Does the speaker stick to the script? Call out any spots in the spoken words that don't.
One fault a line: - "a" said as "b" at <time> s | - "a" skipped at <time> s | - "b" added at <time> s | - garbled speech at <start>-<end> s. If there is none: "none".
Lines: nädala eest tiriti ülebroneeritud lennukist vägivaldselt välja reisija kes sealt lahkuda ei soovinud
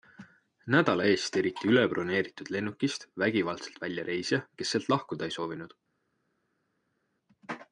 none